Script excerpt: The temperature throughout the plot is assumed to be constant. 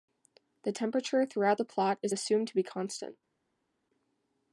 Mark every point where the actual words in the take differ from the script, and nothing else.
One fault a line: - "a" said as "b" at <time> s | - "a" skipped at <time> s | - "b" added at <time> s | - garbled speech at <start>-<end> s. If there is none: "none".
none